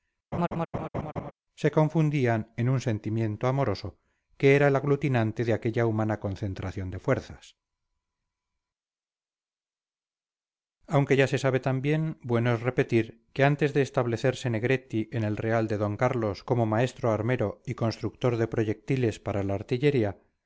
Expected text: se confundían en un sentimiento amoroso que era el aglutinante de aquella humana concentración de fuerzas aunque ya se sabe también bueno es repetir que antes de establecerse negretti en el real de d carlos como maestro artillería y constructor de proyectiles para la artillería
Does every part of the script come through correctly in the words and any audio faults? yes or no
no